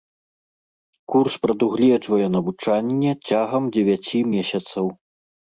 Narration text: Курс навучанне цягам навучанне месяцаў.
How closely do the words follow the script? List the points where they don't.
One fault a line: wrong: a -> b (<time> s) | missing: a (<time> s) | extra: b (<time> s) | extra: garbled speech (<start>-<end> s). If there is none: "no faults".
extra: прадугледжвае (1.5 s)
wrong: навучанне -> дзевяці (3.8 s)